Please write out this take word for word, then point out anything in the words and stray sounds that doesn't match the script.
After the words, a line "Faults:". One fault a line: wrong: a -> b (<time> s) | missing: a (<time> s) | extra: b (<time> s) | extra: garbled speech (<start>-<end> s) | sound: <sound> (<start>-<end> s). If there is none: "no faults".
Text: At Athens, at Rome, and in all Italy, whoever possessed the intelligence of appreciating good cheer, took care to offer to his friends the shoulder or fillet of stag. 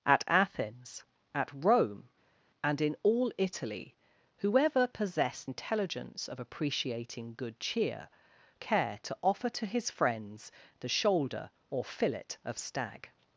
At Athens, at Rome, and in all Italy, whoever possessed intelligence of appreciating good cheer, care to offer to his friends the shoulder or fillet of stag.
Faults:
missing: the (5.5 s)
missing: took (8.1 s)